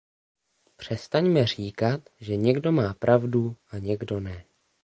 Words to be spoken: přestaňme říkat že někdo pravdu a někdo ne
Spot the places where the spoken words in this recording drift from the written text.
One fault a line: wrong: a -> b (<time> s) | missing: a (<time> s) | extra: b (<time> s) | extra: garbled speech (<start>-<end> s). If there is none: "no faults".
extra: má (2.7 s)